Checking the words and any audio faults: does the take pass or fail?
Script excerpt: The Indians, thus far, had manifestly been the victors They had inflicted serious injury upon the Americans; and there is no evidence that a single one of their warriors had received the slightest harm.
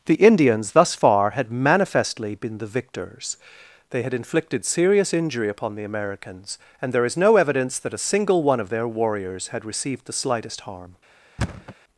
fail